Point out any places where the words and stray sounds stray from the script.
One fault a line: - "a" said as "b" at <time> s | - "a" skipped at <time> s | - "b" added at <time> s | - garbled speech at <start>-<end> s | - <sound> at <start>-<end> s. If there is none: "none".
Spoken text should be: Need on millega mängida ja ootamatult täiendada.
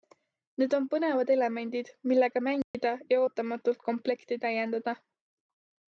- "põnevad elemendid" added at 0.9 s
- dropout at 2.6-2.7 s
- "komplekti" added at 3.9 s